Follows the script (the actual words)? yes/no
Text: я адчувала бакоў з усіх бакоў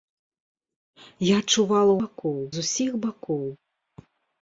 yes